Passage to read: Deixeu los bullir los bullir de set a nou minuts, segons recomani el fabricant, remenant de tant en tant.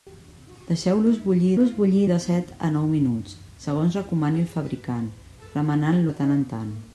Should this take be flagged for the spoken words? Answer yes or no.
no